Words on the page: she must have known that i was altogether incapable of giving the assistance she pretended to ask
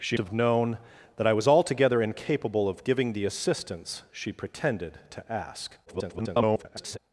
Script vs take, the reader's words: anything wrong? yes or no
yes